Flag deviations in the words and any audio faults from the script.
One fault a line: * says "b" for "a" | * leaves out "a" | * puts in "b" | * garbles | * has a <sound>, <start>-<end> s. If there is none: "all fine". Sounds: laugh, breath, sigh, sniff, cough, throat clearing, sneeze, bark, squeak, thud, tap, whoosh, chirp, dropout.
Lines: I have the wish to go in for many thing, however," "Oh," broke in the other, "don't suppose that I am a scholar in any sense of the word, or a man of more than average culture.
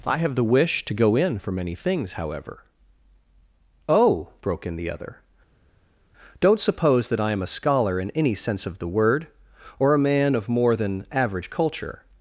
* says "things" for "thing"